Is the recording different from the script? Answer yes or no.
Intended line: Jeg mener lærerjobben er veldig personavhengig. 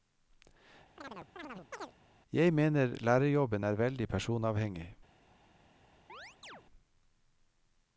no